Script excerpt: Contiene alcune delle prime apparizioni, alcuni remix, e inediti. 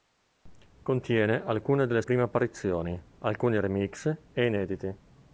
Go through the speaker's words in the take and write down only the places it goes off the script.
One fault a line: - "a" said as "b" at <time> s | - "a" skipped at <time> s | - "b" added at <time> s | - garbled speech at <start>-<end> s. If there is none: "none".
none